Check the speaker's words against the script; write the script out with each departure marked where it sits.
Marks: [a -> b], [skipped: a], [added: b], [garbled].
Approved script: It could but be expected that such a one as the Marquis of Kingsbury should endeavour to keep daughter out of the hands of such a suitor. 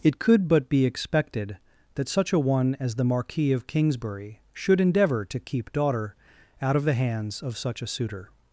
It could but be expected that such a one as the Marquis of Kingsbury should endeavour to keep daughter out of the hands of such a suitor.